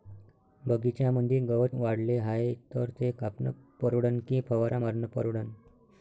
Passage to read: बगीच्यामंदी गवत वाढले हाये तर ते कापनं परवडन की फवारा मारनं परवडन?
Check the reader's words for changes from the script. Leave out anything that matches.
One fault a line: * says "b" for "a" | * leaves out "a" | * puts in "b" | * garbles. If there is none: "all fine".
all fine